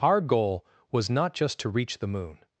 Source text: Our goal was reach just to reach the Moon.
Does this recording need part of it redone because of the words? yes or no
yes